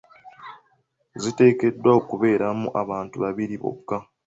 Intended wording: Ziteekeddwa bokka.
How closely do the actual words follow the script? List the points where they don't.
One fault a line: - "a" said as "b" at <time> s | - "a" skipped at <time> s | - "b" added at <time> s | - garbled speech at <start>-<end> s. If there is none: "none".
- "okubeeramu abantu babiri" added at 2.0 s